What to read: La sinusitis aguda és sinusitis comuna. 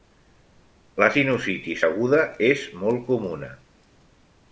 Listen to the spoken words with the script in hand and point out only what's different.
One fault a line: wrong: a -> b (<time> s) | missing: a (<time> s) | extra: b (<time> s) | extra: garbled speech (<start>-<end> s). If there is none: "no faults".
wrong: sinusitis -> molt (2.8 s)